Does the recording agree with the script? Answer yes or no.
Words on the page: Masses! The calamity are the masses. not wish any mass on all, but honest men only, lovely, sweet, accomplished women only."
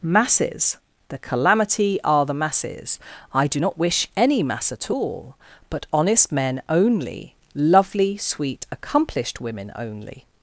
no